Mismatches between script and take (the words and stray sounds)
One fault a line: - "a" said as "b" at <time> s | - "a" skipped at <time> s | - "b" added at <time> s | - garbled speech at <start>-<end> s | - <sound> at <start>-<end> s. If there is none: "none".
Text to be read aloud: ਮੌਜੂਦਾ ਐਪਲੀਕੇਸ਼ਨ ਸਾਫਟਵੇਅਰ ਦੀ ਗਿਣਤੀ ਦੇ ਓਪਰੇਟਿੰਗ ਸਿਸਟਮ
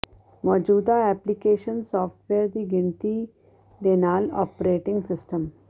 - "ਨਾਲ" added at 4.0 s